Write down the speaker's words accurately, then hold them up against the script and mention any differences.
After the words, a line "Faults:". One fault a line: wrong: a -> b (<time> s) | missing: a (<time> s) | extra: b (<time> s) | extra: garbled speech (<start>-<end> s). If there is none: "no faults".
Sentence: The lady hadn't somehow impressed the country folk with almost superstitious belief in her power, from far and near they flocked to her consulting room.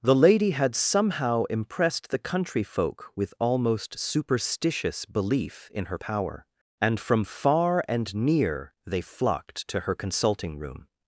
The lady had somehow impressed the country folk with almost superstitious belief in her power, and from far and near they flocked to her consulting room.
Faults:
wrong: hadn't -> had (0.5 s)
extra: and (6.8 s)